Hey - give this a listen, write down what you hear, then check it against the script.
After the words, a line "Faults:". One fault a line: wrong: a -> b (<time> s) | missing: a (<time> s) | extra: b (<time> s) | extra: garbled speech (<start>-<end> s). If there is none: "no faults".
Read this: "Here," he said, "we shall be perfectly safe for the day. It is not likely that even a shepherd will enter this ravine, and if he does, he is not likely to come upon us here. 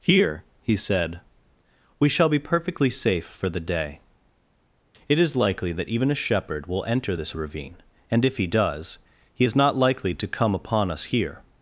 "Here," he said, "we shall be perfectly safe for the day. It is likely that even a shepherd will enter this ravine, and if he does, he is not likely to come upon us here.
Faults:
missing: not (5.3 s)